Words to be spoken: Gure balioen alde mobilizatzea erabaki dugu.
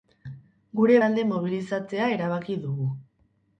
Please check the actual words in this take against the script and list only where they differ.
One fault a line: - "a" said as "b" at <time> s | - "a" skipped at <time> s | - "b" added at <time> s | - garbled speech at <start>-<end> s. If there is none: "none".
- "balioen" skipped at 0.9 s